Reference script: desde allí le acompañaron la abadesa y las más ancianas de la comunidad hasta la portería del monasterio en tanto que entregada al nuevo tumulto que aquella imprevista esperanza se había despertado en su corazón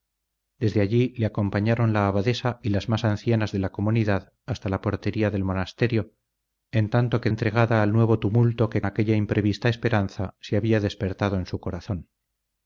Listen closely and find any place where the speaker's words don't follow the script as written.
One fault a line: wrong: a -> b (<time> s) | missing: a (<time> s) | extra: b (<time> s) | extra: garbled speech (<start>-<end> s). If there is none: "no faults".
no faults